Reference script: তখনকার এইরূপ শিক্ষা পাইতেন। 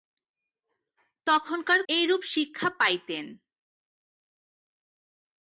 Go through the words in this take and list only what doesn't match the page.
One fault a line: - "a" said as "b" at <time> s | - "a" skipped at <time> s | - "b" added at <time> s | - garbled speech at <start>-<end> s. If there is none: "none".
none